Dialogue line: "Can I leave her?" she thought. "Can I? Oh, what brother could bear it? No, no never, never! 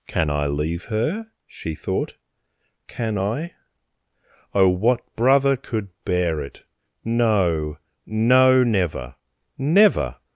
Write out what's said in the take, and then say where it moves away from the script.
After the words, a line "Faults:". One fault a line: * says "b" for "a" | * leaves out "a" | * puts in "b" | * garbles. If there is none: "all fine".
"Can I leave her?" she thought. "Can I? Oh, what brother could bear it? No, no never, never!
Faults:
all fine